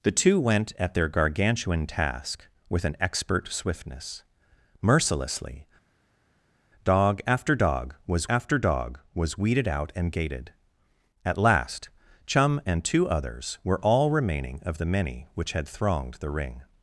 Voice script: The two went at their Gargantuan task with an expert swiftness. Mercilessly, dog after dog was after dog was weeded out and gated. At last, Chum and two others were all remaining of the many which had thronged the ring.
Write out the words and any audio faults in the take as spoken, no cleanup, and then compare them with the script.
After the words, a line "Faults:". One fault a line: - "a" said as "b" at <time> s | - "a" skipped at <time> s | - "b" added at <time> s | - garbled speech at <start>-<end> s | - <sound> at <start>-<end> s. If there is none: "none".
The two went at their Gargantuan task with an expert swiftness. Mercilessly, dog after dog was after dog was weeded out and gated. At last, Chum and two others were all remaining of the many which had thronged the ring.
Faults:
none